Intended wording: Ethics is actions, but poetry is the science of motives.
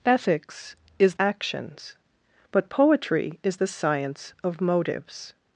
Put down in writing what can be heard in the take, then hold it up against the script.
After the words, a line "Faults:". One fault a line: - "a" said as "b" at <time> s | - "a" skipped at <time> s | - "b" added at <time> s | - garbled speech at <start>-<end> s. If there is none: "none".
Ethics is actions, but poetry is the science of motives.
Faults:
none